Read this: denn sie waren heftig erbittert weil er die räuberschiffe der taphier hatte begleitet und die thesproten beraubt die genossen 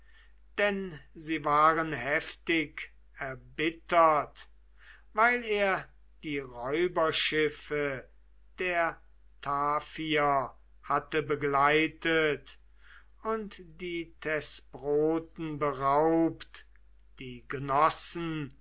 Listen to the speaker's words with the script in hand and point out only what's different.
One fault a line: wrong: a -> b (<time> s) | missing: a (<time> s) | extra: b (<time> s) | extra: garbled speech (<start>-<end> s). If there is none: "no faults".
no faults